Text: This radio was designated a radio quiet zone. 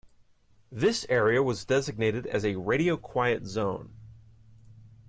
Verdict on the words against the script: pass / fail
fail